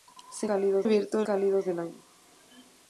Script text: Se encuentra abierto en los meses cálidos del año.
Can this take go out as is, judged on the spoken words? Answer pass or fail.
fail